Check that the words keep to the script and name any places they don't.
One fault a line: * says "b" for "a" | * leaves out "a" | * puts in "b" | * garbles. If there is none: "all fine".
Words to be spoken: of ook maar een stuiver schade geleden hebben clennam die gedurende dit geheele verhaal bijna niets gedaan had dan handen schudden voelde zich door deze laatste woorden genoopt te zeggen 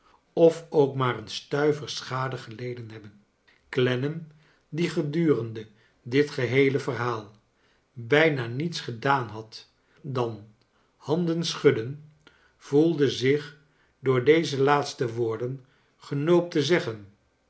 all fine